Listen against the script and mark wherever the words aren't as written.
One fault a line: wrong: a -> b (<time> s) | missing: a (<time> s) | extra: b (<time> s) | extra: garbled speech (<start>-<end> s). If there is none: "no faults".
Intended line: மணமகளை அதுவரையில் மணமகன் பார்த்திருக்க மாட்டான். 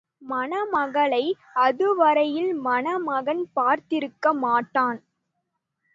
no faults